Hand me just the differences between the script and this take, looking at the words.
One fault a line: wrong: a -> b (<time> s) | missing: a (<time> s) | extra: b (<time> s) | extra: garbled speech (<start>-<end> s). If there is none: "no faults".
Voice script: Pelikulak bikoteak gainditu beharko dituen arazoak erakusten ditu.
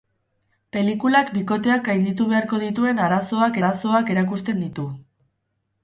extra: arazoak (3.6 s)